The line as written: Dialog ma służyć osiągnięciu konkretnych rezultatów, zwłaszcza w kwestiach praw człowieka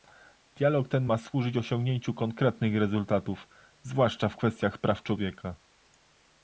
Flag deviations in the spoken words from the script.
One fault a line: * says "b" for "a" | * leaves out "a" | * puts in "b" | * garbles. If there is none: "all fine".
* puts in "ten"